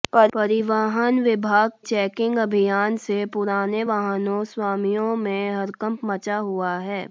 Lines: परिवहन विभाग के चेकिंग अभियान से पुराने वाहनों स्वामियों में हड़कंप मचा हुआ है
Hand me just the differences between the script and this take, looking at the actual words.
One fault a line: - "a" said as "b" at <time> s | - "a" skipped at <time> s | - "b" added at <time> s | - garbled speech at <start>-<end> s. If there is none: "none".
- "के" skipped at 1.7 s